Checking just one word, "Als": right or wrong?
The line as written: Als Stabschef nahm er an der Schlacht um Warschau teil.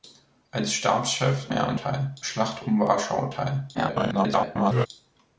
right